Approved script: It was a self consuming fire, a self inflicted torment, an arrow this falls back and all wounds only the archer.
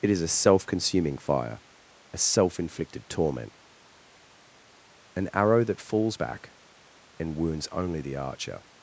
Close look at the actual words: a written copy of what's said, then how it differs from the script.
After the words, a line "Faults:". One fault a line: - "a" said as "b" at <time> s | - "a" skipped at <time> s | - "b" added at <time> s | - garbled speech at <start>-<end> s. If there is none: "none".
It is a self consuming fire, a self inflicted torment, an arrow that falls back and wounds only the archer.
Faults:
- "was" said as "is" at 0.1 s
- "this" said as "that" at 5.6 s
- "all" skipped at 7.4 s